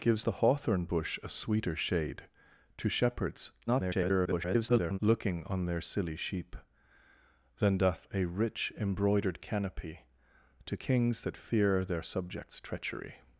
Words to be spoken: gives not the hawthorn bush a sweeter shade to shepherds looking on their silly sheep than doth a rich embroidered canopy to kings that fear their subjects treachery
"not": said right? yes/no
no